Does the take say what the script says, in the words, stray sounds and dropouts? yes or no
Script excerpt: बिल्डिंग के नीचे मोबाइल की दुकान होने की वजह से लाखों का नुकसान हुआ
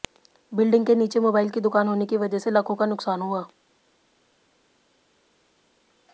yes